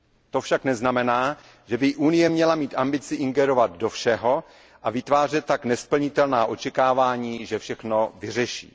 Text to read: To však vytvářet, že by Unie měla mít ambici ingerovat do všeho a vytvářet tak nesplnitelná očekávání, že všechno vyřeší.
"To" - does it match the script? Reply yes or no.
yes